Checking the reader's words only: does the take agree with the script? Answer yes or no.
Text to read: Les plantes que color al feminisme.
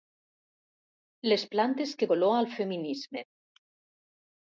yes